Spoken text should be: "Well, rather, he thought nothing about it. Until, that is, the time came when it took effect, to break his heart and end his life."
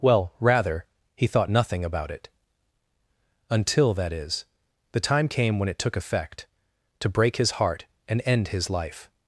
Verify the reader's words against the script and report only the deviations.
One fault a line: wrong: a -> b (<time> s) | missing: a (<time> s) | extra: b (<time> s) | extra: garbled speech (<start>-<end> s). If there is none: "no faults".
no faults